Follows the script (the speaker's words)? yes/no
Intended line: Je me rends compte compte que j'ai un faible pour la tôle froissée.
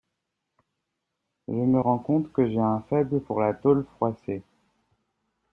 no